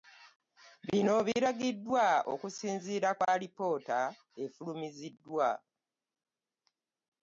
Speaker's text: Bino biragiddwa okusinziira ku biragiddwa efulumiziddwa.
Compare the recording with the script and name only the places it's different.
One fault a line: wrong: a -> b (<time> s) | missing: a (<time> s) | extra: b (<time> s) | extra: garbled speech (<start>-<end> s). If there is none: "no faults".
wrong: biragiddwa -> alipoota (3.3 s)